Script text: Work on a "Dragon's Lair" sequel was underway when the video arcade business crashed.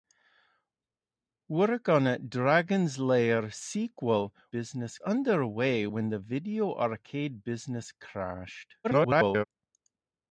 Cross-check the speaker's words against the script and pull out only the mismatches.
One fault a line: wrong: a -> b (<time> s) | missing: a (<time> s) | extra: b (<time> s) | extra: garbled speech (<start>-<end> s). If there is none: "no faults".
wrong: was -> business (4.5 s)
extra: garbled speech (8.8-9.4 s)